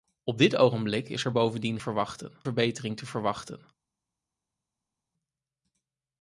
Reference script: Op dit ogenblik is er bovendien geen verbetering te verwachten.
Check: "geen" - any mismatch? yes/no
yes